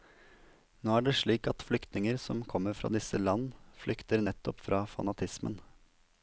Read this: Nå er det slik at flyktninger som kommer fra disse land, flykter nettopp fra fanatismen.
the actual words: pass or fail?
pass